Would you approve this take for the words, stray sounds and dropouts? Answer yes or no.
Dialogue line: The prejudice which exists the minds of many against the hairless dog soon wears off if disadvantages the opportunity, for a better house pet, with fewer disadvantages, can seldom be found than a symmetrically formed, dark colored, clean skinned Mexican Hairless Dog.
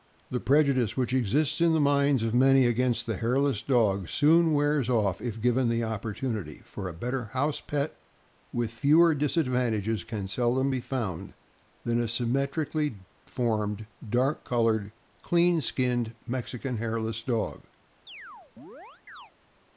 no